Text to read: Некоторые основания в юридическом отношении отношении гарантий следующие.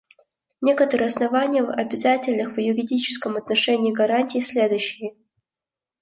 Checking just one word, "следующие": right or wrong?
right